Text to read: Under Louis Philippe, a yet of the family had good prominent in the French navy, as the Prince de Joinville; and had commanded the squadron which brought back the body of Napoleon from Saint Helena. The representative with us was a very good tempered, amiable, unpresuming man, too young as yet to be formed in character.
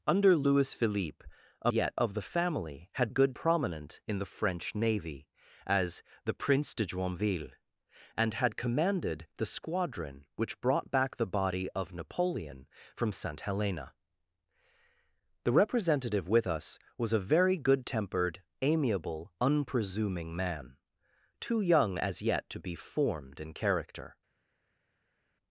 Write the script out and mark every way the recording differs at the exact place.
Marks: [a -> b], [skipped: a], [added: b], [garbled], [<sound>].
Under Louis Philippe, a yet of the family had good prominent in the French navy, as the Prince de Joinville; and had commanded the squadron which brought back the body of Napoleon from Saint Helena. The representative with us was a very good tempered, amiable, unpresuming man, too young as yet to be formed in character.